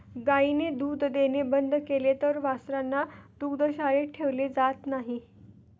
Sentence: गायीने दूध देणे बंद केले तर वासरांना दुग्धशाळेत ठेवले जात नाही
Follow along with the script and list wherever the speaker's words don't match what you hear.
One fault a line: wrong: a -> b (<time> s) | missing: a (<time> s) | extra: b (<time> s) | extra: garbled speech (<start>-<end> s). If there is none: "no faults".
no faults